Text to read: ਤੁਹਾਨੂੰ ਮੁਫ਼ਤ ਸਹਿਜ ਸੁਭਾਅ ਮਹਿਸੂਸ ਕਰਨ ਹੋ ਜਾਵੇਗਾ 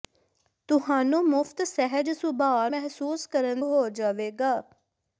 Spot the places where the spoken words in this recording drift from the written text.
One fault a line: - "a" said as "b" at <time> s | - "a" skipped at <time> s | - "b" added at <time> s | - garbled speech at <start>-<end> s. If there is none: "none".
none